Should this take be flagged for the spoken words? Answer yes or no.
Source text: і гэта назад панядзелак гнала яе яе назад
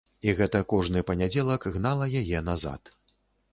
yes